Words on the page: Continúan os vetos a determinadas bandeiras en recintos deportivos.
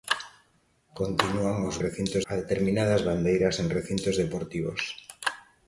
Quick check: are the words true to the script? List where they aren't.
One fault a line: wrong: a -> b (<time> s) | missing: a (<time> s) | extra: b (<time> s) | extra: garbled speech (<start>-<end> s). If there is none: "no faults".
wrong: vetos -> recintos (1.8 s)